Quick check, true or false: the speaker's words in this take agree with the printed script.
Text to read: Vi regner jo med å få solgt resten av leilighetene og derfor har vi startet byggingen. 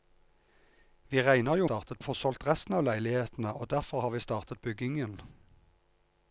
false